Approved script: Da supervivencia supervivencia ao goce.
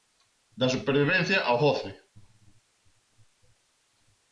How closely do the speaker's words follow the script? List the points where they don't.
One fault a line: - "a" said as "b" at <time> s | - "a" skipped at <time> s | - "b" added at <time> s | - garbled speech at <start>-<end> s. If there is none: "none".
- "supervivencia" skipped at 1.4 s